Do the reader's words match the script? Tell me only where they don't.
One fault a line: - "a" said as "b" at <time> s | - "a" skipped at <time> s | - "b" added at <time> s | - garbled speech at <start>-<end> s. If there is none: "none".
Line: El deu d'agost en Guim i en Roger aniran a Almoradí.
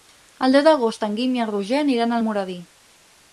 none